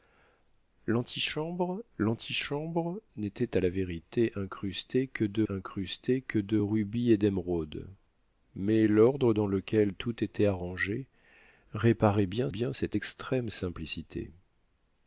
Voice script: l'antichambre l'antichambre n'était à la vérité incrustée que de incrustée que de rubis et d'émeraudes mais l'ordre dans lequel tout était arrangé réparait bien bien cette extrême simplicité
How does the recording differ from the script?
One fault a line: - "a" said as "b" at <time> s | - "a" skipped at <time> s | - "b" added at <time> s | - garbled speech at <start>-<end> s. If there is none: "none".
none